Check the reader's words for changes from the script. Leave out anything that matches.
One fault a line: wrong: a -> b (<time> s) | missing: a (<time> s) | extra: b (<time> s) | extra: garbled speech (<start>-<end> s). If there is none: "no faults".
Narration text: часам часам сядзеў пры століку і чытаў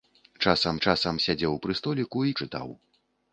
no faults